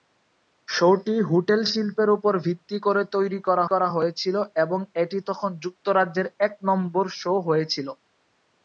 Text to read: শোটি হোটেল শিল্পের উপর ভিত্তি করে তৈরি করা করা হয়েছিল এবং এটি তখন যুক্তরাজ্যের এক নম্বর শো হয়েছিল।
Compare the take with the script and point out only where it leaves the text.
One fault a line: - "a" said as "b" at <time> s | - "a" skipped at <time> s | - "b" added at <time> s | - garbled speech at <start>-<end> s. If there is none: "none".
none